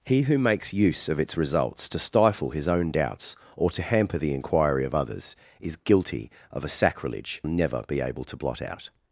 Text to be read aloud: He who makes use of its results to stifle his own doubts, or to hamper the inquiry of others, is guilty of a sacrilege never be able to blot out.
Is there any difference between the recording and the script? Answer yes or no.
no